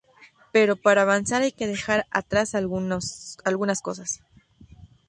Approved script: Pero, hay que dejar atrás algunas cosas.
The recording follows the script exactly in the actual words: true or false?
false